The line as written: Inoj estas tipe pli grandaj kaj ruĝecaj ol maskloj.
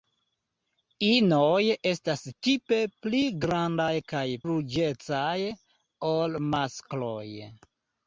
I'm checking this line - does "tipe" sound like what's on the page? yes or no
yes